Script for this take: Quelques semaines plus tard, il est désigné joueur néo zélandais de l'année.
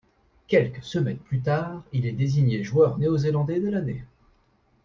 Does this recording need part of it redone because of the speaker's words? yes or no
no